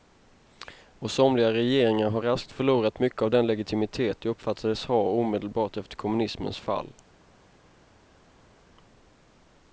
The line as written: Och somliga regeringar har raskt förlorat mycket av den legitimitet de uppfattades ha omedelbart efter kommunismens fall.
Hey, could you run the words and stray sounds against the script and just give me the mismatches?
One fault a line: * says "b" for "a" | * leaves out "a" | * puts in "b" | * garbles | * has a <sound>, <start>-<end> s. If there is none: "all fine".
all fine